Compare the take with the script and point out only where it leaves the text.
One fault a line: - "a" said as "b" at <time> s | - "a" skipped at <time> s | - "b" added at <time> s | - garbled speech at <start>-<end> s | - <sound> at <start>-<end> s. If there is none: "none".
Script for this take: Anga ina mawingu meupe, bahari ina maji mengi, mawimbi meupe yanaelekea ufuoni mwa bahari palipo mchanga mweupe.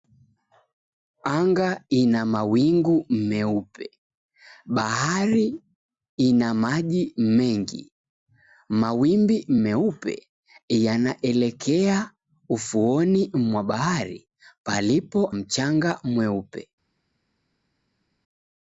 none